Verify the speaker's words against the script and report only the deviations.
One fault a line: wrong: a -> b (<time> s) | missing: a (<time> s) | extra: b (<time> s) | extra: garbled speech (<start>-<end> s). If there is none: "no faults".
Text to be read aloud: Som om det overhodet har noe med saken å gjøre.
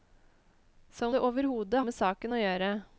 missing: om (1.1 s)
missing: har noe (1.8 s)